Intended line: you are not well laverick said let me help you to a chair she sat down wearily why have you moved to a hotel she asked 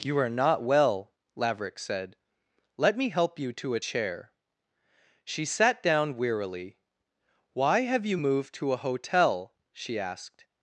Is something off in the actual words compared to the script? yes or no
no